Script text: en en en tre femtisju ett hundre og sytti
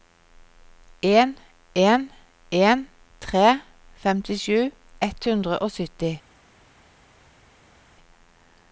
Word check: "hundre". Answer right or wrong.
right